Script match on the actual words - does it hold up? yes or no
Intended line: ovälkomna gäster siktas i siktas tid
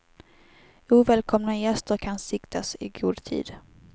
no